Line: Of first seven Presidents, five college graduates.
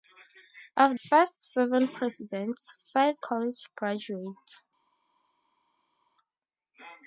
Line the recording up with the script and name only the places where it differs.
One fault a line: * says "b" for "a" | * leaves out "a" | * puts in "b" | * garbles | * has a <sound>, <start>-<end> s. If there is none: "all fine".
all fine